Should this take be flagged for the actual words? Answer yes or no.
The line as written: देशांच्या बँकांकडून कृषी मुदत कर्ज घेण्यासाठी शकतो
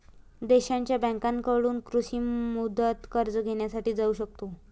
yes